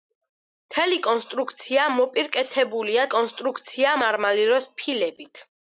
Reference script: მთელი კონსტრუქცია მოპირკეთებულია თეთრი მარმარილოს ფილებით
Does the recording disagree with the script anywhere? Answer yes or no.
yes